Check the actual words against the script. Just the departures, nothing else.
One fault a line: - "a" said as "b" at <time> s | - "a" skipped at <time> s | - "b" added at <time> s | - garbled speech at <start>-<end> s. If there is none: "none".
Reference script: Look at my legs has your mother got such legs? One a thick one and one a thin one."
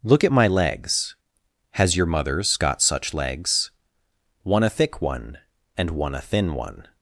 - "mother" said as "mothers" at 2.1 s